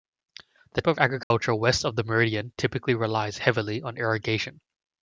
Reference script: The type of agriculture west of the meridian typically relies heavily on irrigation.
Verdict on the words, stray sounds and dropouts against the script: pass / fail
fail